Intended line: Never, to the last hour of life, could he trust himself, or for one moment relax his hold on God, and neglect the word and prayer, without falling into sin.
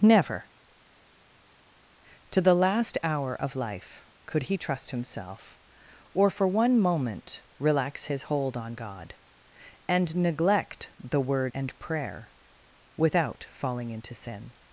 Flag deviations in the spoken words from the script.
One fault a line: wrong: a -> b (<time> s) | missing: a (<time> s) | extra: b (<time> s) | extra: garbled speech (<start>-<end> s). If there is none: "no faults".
no faults